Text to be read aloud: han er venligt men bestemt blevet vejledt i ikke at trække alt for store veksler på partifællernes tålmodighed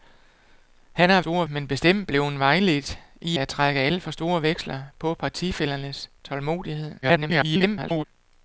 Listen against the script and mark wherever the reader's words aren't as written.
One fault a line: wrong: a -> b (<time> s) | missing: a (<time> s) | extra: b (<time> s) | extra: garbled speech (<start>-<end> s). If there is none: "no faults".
wrong: venligt -> store (1.2 s)
missing: ikke (3.4 s)
extra: garbled speech (7.0-8.1 s)